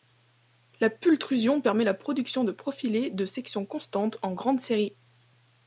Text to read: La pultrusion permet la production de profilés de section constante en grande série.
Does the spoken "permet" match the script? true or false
true